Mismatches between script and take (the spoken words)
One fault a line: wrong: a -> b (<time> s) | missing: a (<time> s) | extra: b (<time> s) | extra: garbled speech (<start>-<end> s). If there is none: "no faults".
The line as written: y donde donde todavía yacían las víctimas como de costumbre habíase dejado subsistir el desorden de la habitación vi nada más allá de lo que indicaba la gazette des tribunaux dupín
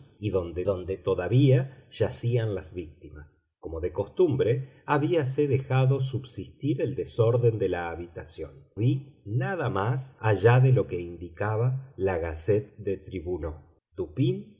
no faults